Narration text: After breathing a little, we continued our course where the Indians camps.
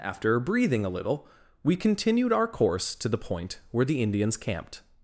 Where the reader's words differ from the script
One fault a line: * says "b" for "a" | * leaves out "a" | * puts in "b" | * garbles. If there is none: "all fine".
* puts in "to the point"
* says "camped" for "camps"